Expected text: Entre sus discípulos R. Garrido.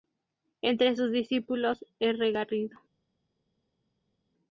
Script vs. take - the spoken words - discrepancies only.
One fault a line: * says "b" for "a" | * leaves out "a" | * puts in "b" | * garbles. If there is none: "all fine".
all fine